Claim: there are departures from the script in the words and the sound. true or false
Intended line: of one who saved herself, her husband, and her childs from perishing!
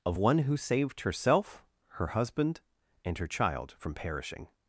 true